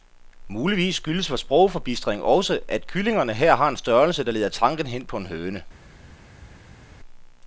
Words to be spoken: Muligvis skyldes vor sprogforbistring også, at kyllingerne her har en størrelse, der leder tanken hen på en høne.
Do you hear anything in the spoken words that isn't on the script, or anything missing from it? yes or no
no